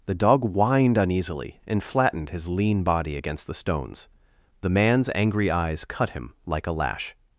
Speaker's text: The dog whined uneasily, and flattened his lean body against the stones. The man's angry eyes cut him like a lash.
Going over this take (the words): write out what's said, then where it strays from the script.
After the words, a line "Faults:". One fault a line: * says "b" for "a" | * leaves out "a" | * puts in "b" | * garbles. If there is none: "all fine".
The dog whined uneasily, and flattened his lean body against the stones. The man's angry eyes cut him like a lash.
Faults:
all fine